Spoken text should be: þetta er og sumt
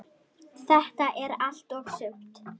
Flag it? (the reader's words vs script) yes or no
yes